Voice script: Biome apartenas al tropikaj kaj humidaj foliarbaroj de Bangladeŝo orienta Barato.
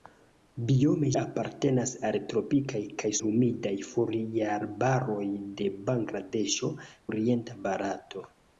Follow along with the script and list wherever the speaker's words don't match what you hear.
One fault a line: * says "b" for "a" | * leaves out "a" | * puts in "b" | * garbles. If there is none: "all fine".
all fine